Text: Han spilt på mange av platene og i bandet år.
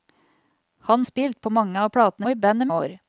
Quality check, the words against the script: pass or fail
pass